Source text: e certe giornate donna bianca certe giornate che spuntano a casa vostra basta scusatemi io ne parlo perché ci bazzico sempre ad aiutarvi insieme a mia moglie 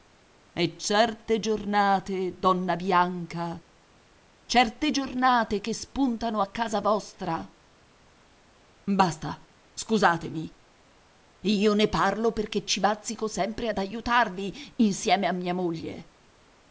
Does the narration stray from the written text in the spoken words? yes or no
no